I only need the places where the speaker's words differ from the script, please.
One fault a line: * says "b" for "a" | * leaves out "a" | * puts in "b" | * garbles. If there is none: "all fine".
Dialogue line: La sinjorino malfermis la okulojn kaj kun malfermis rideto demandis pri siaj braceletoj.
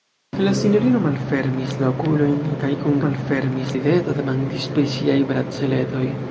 all fine